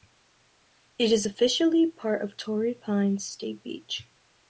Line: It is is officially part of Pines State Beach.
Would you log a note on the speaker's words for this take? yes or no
yes